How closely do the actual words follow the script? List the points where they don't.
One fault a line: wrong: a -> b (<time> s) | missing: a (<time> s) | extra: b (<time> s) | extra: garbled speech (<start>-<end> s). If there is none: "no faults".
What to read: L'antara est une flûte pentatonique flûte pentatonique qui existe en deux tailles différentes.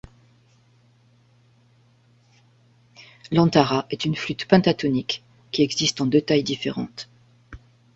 missing: flûte pentatonique (5.2 s)